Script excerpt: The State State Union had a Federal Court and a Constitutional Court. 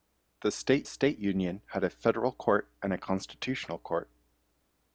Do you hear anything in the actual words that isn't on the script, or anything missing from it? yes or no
no